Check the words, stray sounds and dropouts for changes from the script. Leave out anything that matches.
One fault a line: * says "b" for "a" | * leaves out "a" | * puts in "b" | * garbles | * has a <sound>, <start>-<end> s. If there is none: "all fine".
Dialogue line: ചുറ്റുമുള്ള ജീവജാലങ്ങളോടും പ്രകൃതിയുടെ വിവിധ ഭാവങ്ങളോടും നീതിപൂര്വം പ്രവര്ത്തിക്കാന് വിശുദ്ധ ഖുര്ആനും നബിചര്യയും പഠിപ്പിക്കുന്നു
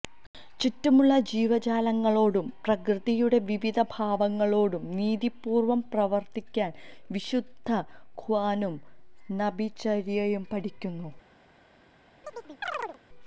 * has a chirp, 12.2-13.0 s